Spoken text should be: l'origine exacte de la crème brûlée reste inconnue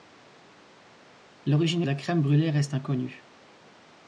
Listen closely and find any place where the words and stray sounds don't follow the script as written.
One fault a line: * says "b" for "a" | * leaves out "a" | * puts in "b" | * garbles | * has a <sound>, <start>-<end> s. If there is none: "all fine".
* leaves out "exacte"